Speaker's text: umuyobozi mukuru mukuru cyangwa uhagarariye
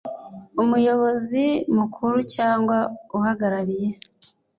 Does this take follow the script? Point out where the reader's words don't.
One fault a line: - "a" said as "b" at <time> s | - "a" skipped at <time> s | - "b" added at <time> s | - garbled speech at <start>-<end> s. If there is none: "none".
- "mukuru" skipped at 2.2 s